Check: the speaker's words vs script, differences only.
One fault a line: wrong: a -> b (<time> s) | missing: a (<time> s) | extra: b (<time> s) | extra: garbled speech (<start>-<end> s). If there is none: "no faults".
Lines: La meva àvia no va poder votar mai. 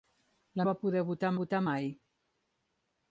missing: meva àvia no (0.7 s)
extra: votar (1.4 s)